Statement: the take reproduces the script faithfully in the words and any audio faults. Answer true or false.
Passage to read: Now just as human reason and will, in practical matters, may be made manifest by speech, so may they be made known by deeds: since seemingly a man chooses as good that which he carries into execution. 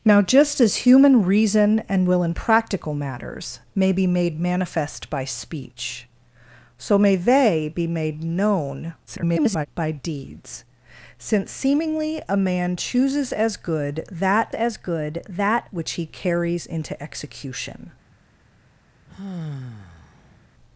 false